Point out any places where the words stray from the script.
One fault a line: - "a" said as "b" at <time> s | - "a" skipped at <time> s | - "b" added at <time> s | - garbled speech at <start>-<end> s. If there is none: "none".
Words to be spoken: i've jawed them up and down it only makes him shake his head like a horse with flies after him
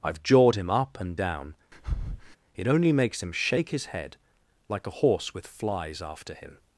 - "them" said as "him" at 0.6 s